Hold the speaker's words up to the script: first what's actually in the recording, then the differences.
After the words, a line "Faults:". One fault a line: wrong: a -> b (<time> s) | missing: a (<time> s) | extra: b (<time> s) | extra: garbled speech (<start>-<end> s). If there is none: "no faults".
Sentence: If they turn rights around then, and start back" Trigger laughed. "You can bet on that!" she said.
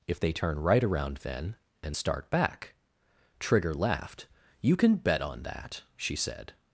If they turn right around then, and start back" Trigger laughed. "You can bet on that!" she said.
Faults:
wrong: rights -> right (0.6 s)